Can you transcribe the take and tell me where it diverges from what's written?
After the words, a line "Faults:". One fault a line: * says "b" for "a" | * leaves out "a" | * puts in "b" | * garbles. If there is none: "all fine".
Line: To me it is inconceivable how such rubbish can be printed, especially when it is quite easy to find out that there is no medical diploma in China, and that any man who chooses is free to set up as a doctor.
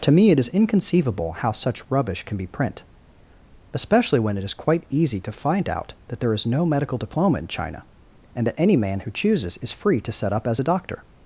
To me it is inconceivable how such rubbish can be print, especially when it is quite easy to find out that there is no medical diploma in China, and that any man who chooses is free to set up as a doctor.
Faults:
* says "print" for "printed"